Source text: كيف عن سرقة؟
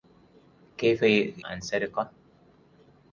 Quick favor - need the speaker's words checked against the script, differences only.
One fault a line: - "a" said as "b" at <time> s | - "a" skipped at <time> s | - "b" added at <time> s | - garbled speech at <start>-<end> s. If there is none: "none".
none